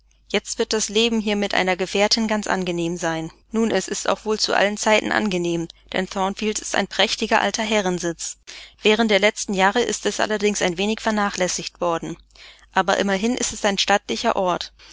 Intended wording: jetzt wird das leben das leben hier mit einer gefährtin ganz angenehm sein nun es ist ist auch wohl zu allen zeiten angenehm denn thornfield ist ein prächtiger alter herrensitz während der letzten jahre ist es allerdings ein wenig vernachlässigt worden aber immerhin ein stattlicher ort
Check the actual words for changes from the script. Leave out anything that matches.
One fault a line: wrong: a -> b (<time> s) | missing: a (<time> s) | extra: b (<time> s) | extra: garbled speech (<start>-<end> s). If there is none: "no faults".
missing: das leben (1.2 s)
missing: ist (4.1 s)
extra: ist es (13.4 s)